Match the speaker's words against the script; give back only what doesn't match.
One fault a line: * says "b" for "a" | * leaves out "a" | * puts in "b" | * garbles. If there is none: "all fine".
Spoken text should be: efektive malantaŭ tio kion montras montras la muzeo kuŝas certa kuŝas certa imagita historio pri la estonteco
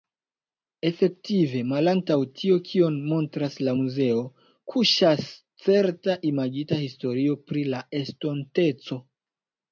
* leaves out "montras"
* leaves out "kuŝas certa"